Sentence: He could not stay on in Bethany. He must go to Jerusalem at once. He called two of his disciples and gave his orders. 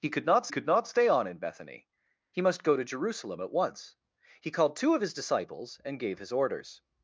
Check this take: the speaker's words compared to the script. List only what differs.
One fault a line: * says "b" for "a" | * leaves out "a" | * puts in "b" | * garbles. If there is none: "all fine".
* puts in "could not"